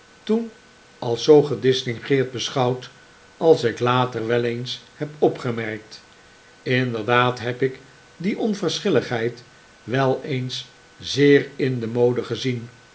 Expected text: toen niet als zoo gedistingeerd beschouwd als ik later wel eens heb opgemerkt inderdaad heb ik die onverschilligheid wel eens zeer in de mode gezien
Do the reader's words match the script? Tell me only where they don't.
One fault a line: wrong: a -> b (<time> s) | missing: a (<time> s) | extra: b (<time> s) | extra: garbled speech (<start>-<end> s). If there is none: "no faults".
missing: niet (0.5 s)